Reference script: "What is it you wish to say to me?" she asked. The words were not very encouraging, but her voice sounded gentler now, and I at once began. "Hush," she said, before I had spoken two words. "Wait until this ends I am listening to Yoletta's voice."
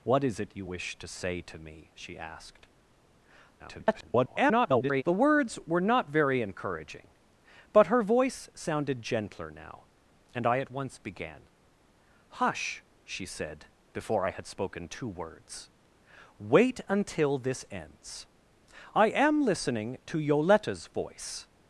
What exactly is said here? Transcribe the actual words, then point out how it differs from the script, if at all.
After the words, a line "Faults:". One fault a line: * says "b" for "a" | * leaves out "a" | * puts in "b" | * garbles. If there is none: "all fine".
"What is it you wish to say to me?" she asked. [garbled] The words were not very encouraging, but her voice sounded gentler now, and I at once began. "Hush," she said, before I had spoken two words. "Wait until this ends I am listening to Yoletta's voice."
Faults:
* garbles